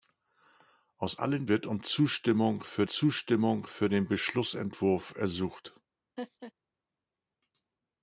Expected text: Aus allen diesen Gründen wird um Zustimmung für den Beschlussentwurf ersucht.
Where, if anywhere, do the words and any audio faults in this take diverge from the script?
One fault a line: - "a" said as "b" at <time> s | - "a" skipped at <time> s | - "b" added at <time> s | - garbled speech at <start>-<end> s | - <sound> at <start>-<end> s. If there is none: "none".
- "diesen Gründen wird um" said as "wird um Zustimmung für" at 1.5 s
- laugh at 6.2-6.5 s